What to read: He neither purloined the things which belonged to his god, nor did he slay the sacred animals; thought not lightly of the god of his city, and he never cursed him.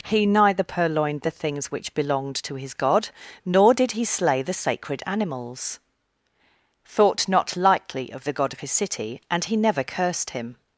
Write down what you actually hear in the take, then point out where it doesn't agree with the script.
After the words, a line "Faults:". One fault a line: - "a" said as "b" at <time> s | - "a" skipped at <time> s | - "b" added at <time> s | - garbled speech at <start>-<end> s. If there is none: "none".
He neither purloined the things which belonged to his god, nor did he slay the sacred animals; thought not lightly of the god of his city, and he never cursed him.
Faults:
none